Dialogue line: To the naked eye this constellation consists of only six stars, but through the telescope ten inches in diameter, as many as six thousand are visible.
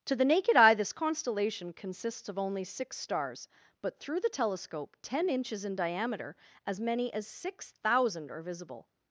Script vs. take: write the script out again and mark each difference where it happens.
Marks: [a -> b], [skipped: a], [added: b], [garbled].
To the naked eye this constellation consists of only six stars, but through the telescope ten inches in diameter, as many as six thousand are visible.